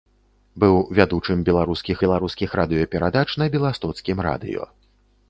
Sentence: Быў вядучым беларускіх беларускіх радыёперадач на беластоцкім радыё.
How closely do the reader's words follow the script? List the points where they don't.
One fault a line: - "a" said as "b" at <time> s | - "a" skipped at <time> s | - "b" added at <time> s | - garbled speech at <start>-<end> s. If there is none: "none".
none